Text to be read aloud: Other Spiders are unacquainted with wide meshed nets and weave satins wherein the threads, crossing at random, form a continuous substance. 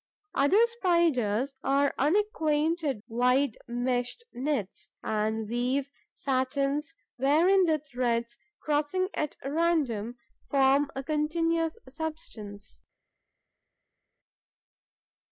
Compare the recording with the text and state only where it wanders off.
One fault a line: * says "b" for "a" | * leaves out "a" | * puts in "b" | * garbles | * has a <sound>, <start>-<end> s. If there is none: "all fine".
* leaves out "with"